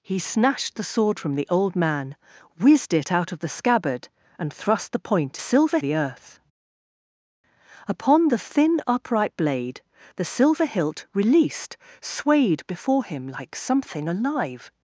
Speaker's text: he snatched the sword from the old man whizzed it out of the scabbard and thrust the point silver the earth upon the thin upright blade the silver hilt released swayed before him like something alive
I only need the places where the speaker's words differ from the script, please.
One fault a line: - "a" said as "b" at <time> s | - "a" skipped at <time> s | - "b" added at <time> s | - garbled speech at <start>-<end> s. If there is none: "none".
none